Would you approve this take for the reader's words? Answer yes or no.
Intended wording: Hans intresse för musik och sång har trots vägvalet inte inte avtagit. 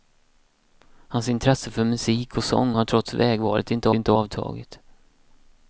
yes